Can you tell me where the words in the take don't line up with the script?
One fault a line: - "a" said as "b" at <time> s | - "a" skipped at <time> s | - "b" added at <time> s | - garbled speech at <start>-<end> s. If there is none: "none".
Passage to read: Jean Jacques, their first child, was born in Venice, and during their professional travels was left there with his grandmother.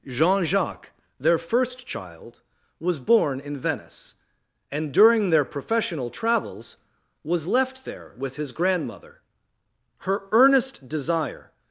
- "Her earnest desire" added at 10.0 s